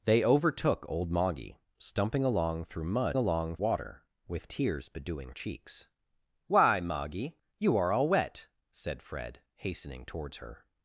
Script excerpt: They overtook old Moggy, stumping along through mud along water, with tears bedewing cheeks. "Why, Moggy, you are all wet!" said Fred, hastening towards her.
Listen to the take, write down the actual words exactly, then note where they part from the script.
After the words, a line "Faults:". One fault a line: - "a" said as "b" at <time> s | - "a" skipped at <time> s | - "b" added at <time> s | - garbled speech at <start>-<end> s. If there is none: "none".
They overtook old Moggy, stumping along through mud along water, with tears bedewing cheeks. "Why, Moggy, you are all wet!" said Fred, hastening towards her.
Faults:
none